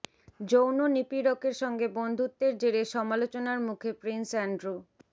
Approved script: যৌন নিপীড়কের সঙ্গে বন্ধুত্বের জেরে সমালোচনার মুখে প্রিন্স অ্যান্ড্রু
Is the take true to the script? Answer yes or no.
yes